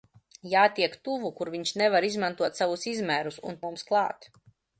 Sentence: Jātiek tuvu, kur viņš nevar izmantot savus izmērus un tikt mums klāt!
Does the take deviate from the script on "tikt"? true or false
true